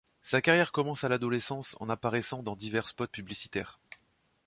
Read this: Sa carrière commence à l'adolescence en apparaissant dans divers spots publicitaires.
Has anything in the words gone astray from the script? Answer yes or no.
no